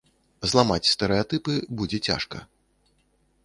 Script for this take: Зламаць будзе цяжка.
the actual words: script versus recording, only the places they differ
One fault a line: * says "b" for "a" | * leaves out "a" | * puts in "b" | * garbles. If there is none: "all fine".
* puts in "стэрэатыпы"